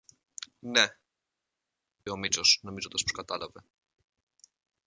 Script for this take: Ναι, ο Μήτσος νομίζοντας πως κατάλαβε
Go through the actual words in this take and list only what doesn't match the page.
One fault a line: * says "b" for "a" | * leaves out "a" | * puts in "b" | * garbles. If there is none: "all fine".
all fine